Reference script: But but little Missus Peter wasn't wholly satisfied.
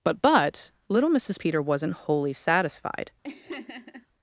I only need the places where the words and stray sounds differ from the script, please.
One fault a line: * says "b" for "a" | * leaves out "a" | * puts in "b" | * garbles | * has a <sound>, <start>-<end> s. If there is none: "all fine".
* has a laugh, 3.2-4.1 s